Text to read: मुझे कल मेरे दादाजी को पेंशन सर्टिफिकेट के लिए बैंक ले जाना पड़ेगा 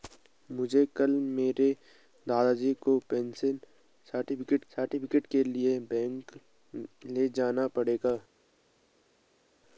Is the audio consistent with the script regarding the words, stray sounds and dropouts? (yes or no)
no